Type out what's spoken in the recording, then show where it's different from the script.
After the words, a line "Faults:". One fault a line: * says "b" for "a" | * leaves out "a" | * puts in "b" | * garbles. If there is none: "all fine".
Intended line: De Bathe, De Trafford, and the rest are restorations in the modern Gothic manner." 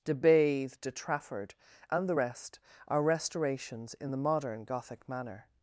De Bathe, De Trafford, and the rest are restorations in the modern Gothic manner."
Faults:
all fine